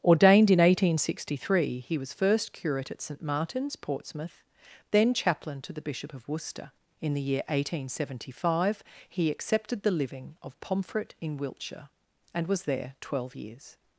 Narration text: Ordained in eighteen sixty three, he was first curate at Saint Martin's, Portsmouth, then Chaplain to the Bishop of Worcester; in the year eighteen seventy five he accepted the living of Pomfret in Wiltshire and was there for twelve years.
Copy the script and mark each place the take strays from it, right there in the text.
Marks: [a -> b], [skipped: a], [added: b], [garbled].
Ordained in eighteen sixty three, he was first curate at Saint Martin's, Portsmouth, then Chaplain to the Bishop of Worcester; in the year eighteen seventy five he accepted the living of Pomfret in Wiltshire and was there [skipped: for] twelve years.